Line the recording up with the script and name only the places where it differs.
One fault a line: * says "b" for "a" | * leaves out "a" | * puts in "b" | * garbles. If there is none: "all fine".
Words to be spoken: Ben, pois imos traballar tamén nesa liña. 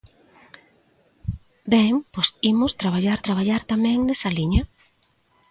* puts in "traballar"